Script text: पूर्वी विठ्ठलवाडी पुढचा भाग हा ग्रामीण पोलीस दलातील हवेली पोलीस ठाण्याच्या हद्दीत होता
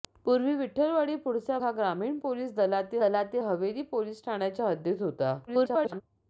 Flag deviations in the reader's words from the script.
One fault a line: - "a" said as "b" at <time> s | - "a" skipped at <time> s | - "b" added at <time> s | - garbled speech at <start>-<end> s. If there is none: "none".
- "भाग" skipped at 1.6 s
- "दलातील" added at 3.0 s
- garbled speech at 5.5-6.0 s